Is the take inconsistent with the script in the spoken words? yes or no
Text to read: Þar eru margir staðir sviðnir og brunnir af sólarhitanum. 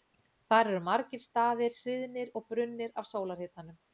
no